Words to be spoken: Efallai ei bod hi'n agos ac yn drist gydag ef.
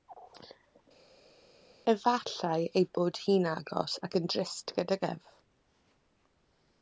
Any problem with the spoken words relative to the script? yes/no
no